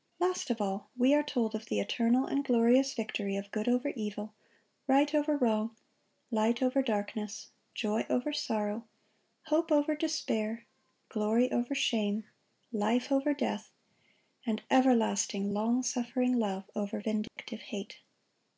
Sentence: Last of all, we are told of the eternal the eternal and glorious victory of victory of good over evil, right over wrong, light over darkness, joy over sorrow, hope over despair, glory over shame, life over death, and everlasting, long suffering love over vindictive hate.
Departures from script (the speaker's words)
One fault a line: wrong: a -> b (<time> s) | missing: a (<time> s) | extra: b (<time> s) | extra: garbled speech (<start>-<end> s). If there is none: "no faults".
missing: the eternal (2.2 s)
missing: victory of (3.5 s)